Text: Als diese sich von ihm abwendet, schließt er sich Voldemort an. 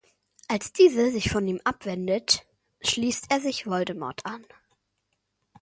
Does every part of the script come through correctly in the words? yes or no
yes